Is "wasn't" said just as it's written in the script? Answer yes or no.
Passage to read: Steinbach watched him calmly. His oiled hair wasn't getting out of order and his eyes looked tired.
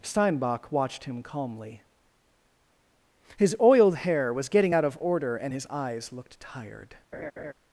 no